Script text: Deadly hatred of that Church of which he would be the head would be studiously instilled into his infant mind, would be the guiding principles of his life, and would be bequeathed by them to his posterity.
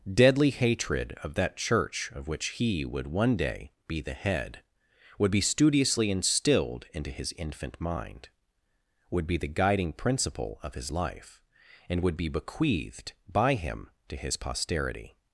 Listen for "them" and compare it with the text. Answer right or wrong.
wrong